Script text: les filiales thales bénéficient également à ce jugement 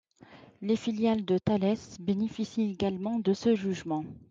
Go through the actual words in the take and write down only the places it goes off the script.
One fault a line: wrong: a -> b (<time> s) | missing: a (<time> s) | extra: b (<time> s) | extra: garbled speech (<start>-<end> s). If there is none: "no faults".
extra: de (1.2 s)
wrong: à -> de (3.2 s)